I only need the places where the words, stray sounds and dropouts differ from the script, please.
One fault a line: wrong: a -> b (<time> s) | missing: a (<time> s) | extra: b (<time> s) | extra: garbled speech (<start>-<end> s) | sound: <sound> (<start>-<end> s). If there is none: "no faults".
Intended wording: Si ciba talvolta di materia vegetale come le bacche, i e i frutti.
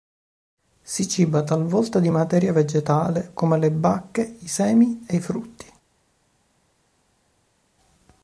extra: semi (4.5 s)